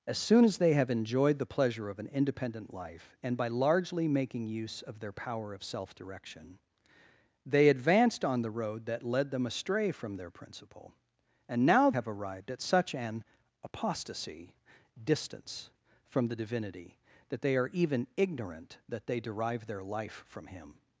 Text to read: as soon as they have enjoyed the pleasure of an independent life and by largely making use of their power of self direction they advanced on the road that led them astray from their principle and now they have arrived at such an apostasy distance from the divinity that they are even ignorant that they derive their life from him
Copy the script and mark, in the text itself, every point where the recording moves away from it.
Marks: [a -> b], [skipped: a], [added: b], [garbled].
as soon as they have enjoyed the pleasure of an independent life and by largely making use of their power of self direction they advanced on the road that led them astray from their principle and now [skipped: they] have arrived at such an apostasy distance from the divinity that they are even ignorant that they derive their life from him